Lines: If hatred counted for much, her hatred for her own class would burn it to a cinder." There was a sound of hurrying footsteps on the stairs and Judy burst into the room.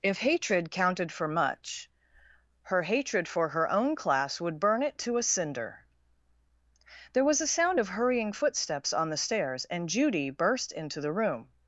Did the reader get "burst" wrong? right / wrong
right